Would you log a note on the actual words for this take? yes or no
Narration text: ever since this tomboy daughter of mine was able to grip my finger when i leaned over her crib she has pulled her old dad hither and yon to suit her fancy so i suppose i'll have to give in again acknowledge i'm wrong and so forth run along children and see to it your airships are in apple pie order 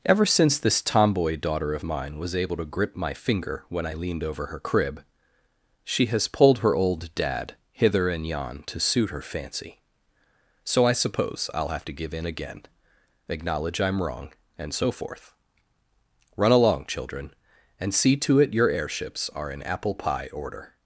no